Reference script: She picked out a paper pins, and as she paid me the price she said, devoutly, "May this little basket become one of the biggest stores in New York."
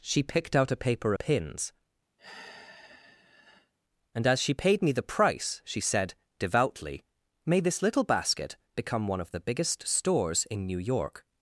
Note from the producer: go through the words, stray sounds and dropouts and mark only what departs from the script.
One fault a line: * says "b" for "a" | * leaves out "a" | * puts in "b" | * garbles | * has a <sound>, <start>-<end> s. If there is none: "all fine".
* has a sigh, 2.2-3.7 s